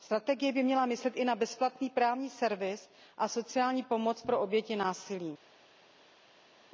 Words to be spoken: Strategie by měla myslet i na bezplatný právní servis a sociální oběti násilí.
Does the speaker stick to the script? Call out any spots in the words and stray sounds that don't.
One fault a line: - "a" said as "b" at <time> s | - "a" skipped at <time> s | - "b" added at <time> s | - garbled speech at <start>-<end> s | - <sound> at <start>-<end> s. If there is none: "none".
- "pomoc pro" added at 3.8 s